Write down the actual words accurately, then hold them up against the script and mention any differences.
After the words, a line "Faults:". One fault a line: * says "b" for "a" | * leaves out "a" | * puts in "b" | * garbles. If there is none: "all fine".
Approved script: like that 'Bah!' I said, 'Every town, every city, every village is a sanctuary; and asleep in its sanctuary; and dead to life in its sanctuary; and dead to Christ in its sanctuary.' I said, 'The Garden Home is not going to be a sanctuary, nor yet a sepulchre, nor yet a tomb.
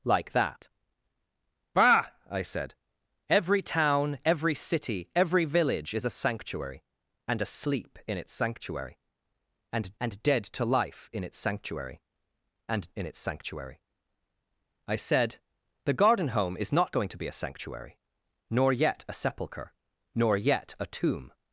like that 'Bah!' I said, 'Every town, every city, every village is a sanctuary; and asleep in its sanctuary; and and dead to life in its sanctuary; and in its sanctuary.' I said, 'The Garden Home is not going to be a sanctuary, nor yet a sepulchre, nor yet a tomb.
Faults:
* puts in "and"
* leaves out "dead to Christ"